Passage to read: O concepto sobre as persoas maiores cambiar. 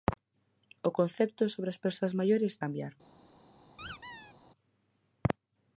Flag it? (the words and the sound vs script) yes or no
yes